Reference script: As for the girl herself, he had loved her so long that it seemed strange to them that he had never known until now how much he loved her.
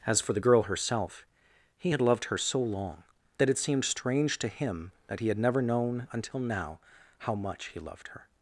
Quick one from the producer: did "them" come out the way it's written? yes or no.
no